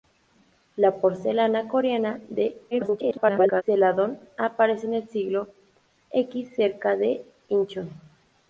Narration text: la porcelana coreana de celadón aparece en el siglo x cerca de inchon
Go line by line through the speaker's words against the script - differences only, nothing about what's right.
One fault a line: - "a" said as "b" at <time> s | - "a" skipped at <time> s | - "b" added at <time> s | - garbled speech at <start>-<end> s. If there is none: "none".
- garbled speech at 2.7-3.6 s